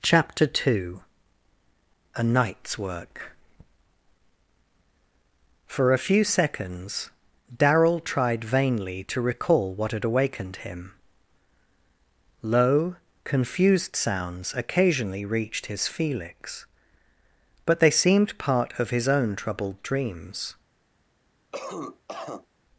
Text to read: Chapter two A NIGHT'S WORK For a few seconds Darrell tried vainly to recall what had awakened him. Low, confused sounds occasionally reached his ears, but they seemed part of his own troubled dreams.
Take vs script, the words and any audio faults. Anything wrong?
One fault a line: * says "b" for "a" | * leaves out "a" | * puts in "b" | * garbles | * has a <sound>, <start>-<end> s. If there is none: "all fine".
* says "felix" for "ears"
* has a cough, 21.5-22.5 s